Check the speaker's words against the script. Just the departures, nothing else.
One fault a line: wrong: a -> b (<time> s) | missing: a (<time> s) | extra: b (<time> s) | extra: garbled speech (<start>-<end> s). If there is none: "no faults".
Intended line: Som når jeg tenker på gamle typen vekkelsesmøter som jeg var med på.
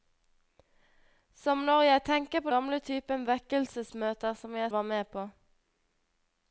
no faults